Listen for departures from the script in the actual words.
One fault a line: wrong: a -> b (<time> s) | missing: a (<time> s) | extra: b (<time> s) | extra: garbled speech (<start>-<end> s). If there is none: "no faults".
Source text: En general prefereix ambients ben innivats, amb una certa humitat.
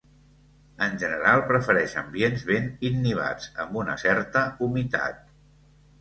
no faults